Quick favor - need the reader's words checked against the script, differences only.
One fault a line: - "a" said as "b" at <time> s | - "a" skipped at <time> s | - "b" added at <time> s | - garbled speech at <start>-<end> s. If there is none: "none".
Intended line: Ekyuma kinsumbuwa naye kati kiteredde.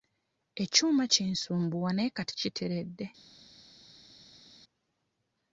none